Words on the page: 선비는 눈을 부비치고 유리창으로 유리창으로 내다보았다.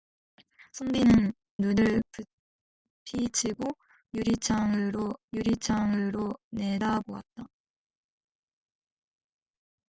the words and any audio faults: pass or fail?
pass